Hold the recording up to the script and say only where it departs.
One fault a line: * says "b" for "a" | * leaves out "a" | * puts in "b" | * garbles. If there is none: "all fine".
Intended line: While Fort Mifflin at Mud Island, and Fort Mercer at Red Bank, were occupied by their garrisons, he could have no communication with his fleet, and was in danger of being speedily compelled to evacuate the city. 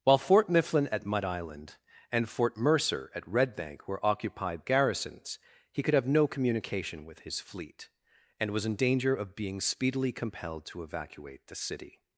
* leaves out "by their"